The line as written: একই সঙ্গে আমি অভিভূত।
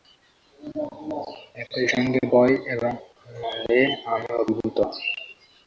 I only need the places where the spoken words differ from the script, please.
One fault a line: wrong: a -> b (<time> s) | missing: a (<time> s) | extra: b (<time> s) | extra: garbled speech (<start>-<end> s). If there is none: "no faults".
extra: ভয় এবং আনন্দে (2.3 s)